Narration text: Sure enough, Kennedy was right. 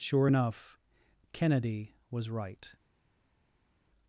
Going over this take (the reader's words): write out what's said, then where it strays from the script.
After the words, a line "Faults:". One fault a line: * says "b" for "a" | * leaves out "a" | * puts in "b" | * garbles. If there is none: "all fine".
Sure enough, Kennedy was right.
Faults:
all fine